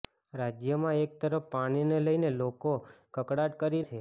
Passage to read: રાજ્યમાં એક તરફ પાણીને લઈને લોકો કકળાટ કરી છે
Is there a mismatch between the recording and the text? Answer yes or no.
no